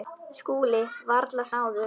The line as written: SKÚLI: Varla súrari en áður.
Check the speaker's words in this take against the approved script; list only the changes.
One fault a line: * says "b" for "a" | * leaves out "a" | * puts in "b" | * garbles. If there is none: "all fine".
* leaves out "súrari en"